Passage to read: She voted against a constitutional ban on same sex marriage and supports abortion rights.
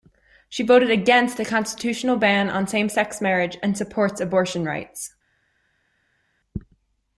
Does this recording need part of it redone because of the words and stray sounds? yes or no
no